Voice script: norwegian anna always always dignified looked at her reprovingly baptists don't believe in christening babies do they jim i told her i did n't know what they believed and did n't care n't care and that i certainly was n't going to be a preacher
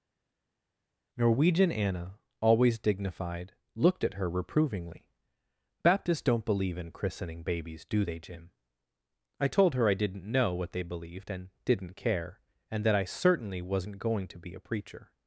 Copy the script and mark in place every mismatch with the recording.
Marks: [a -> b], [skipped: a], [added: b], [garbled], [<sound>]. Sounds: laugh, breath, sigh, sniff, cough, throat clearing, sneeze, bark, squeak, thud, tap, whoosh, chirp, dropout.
norwegian anna always [skipped: always] dignified looked at her reprovingly baptists don't believe in christening babies do they jim i told her i did n't know what they believed and did n't care [skipped: n't care] and that i certainly was n't going to be a preacher